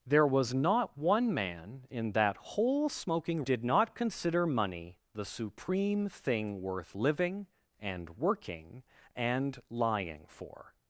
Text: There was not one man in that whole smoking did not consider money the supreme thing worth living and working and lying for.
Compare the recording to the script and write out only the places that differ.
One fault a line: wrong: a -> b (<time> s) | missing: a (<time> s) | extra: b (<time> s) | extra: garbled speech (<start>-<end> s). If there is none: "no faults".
no faults